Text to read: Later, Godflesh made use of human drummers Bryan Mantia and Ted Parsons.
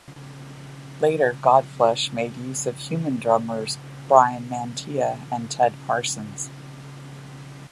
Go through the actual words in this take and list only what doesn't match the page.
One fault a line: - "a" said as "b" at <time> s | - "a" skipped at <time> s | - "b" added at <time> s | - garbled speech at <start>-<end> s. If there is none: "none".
none